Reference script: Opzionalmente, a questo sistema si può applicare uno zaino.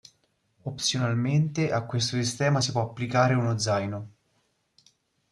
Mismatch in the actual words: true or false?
false